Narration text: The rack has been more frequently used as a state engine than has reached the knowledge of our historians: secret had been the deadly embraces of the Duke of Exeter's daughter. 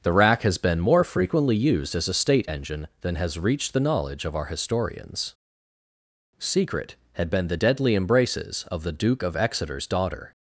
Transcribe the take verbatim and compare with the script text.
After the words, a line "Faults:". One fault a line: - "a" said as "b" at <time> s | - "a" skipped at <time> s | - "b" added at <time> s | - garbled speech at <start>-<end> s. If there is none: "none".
The rack has been more frequently used as a state engine than has reached the knowledge of our historians: secret had been the deadly embraces of the Duke of Exeter's daughter.
Faults:
none